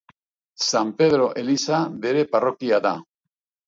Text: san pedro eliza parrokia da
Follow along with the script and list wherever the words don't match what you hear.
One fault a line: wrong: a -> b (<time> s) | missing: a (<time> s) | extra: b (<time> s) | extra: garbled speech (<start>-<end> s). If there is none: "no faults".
extra: bere (2.1 s)